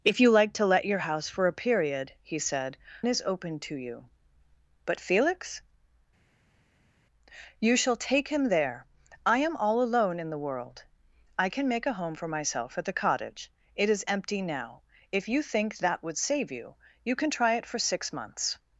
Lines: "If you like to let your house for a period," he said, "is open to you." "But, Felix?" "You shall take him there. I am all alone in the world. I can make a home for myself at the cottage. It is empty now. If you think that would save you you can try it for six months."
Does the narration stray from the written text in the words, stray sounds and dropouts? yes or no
no